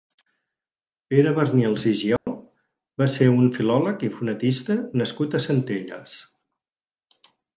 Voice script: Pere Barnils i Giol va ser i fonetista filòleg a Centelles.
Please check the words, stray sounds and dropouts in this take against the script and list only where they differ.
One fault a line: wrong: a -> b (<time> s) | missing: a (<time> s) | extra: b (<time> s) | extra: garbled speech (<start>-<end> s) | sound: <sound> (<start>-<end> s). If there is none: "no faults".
sound: dropout (2.2-2.3 s)
extra: un filòleg (3.3 s)
wrong: filòleg -> nascut (5.0 s)